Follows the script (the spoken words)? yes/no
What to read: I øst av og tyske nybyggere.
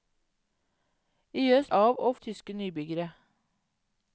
yes